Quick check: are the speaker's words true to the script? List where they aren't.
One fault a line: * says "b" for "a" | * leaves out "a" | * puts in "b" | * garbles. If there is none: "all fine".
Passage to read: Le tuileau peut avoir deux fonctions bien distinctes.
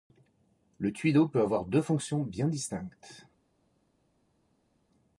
all fine